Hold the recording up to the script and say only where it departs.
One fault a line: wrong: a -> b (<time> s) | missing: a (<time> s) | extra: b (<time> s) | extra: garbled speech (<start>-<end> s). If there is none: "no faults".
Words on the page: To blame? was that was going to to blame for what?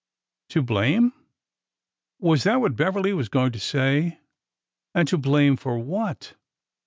extra: what Beverly (2.6 s)
extra: say And (3.6 s)